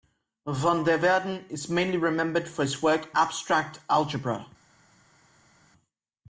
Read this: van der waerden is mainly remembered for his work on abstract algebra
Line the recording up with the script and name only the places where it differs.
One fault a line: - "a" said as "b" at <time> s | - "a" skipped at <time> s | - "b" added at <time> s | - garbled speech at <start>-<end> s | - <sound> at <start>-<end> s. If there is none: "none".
- "on" skipped at 3.1 s